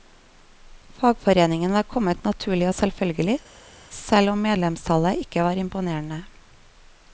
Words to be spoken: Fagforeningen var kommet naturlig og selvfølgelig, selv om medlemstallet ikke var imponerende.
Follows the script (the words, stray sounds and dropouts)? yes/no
yes